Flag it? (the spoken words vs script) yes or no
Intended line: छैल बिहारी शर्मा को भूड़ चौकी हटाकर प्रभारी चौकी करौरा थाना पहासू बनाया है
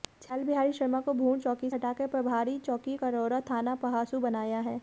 no